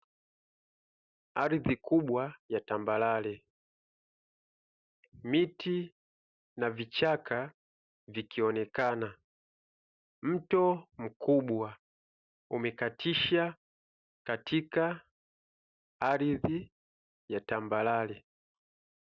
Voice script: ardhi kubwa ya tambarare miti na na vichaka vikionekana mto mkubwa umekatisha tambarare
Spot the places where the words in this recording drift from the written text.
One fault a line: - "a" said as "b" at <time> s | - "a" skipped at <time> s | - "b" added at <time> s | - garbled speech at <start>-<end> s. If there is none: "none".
- "na" skipped at 6.7 s
- "katika ardhi ya" added at 14.3 s